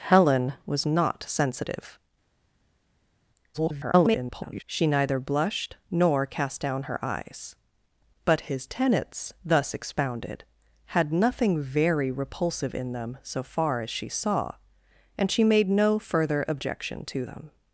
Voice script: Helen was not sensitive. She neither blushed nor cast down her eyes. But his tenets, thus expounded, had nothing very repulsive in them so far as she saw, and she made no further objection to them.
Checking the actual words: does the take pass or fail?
fail